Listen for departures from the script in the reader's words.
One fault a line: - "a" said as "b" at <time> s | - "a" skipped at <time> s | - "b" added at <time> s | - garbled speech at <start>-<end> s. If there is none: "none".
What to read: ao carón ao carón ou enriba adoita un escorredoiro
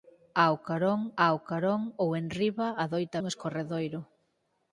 none